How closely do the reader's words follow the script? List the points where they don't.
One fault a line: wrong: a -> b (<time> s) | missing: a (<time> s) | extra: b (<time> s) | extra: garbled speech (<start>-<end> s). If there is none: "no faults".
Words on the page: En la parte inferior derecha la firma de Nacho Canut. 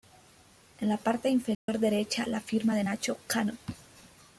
no faults